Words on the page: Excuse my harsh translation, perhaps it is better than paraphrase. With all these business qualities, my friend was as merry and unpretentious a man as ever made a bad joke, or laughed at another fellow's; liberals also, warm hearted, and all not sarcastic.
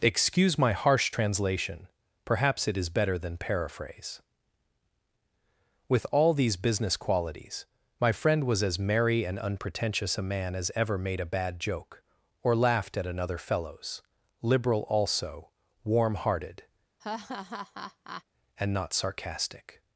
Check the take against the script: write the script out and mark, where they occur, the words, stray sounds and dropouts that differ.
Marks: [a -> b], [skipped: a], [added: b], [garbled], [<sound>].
Excuse my harsh translation, perhaps it is better than paraphrase. With all these business qualities, my friend was as merry and unpretentious a man as ever made a bad joke, or laughed at another fellow's; [liberals -> liberal] also, warm hearted, [laugh] and [skipped: all] not sarcastic.